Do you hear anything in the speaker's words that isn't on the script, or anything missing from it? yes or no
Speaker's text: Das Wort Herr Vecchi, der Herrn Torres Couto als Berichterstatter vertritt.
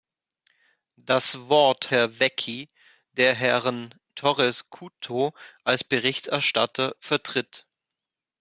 no